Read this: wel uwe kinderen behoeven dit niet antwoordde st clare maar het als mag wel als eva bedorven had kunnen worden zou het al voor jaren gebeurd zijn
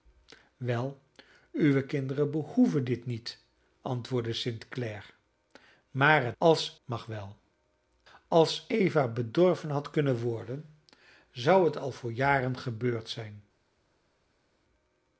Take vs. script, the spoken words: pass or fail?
pass